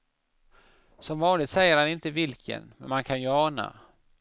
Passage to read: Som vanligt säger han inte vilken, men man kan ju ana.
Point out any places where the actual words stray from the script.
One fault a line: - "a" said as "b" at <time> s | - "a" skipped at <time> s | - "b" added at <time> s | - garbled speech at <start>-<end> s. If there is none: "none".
none